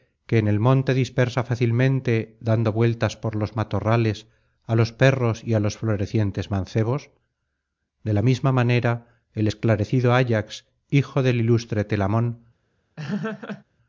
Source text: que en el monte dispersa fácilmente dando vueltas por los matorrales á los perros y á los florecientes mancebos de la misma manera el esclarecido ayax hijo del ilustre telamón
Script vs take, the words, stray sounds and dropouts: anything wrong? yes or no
yes